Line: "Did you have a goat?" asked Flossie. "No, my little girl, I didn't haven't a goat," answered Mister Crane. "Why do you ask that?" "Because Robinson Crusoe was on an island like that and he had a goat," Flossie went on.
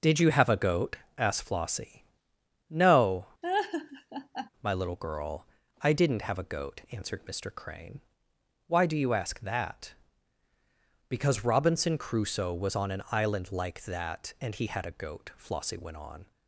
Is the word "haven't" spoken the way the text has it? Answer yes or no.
no